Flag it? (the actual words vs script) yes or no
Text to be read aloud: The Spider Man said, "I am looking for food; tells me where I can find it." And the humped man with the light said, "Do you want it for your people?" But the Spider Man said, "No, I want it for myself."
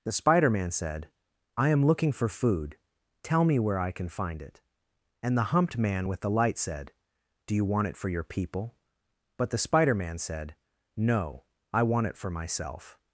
yes